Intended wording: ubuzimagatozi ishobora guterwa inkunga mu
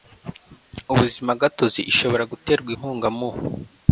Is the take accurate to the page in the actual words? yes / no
yes